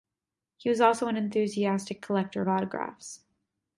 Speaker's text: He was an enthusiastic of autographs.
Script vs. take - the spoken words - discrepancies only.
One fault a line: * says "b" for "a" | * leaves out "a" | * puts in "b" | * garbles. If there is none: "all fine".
* puts in "also"
* puts in "collector"